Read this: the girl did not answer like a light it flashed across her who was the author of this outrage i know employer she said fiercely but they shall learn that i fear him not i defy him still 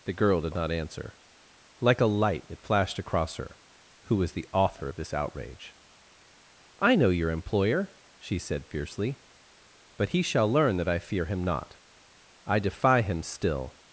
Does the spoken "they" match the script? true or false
false